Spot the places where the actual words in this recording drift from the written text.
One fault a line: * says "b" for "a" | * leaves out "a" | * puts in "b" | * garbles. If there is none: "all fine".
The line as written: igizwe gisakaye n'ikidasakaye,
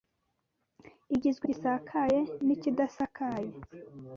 all fine